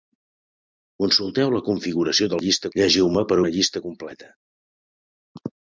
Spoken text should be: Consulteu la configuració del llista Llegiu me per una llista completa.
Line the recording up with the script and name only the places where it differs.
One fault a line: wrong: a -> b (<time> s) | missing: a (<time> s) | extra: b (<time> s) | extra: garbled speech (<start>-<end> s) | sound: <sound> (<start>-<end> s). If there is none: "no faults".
no faults